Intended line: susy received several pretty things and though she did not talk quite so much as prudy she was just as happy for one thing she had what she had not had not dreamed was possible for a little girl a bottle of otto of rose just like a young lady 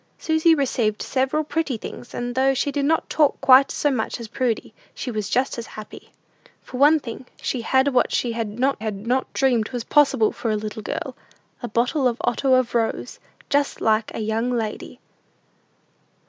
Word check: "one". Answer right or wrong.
right